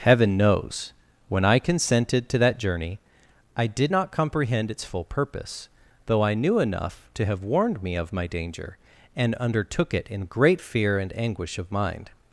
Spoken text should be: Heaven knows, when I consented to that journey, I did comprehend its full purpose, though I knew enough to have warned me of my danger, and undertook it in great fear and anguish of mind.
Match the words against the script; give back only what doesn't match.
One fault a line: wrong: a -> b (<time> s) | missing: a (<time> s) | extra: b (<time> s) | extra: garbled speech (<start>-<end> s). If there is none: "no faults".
extra: not (3.9 s)